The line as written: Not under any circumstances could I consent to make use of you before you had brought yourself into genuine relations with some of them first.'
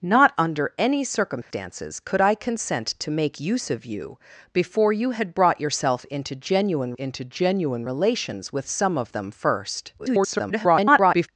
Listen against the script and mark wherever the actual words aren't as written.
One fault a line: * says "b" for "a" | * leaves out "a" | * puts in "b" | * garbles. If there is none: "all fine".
* puts in "into genuine"
* garbles